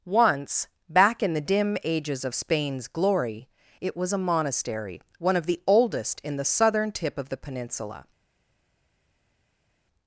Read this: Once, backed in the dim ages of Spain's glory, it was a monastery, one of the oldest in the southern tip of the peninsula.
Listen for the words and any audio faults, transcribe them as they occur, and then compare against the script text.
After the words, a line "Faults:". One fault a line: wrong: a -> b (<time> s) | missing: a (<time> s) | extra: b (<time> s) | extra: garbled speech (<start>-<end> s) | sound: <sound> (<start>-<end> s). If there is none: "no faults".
Once, back in the dim ages of Spain's glory, it was a monastery, one of the oldest in the southern tip of the peninsula.
Faults:
wrong: backed -> back (0.9 s)